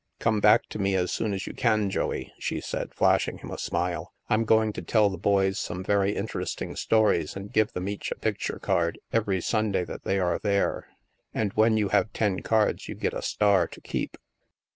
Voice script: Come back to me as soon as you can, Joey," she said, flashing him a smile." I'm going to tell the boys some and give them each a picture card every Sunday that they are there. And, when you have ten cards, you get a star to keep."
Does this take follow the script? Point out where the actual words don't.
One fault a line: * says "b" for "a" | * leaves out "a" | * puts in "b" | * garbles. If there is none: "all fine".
* puts in "very interesting stories"